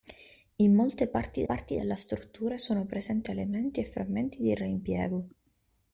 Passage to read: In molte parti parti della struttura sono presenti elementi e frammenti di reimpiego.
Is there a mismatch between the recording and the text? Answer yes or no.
no